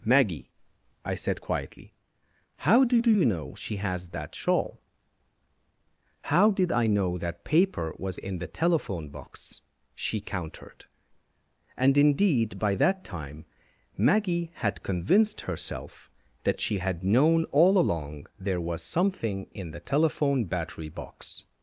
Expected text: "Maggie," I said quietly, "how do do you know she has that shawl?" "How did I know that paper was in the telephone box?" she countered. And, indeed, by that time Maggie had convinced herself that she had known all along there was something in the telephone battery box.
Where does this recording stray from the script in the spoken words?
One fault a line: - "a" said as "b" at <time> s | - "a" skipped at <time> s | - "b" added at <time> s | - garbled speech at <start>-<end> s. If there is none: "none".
none